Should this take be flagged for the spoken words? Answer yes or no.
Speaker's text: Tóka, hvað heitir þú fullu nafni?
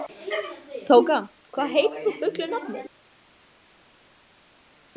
no